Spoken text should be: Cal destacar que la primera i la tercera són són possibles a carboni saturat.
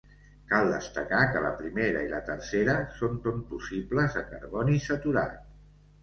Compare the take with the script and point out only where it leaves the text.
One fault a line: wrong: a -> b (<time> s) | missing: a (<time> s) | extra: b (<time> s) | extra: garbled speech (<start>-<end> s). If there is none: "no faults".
no faults